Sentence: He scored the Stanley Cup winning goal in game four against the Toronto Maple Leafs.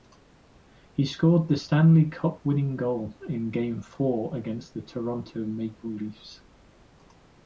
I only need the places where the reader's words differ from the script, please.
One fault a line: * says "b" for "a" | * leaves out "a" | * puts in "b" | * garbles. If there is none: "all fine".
all fine